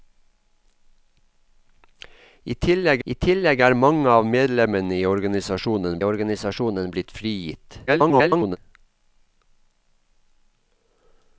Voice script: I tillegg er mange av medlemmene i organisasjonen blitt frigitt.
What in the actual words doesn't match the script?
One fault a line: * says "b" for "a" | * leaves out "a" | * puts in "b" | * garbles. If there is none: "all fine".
* puts in "I tillegg"
* puts in "organisasjonen"
* garbles